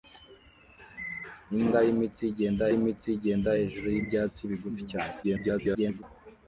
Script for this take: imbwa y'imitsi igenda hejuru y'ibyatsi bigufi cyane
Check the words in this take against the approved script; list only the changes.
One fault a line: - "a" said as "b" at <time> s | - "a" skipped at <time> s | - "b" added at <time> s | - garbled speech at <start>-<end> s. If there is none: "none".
- "y'imitsi igenda" added at 2.7 s
- garbled speech at 5.2-6.0 s